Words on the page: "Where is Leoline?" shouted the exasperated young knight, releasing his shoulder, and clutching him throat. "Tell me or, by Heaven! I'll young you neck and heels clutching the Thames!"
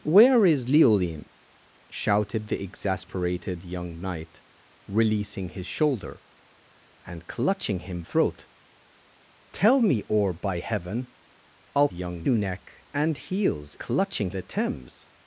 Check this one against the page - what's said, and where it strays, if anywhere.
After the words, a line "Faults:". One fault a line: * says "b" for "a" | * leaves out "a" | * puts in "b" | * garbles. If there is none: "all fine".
"Where is Leoline?" shouted the exasperated young knight, releasing his shoulder, and clutching him throat. "Tell me or, by Heaven! I'll young you neck and heels clutching the Thames!"
Faults:
all fine